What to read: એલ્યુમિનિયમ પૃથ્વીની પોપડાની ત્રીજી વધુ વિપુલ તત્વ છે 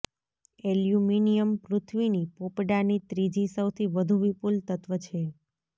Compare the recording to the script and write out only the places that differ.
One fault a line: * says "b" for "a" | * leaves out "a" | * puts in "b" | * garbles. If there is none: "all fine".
* puts in "સૌથી"